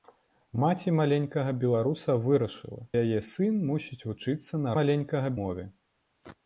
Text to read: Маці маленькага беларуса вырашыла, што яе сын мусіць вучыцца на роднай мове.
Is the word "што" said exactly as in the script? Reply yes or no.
no